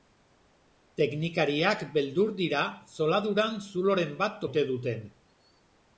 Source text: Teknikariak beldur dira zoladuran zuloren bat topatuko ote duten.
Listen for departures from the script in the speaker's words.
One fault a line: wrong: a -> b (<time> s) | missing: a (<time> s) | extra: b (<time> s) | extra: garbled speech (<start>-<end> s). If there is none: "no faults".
missing: topatuko (4.4 s)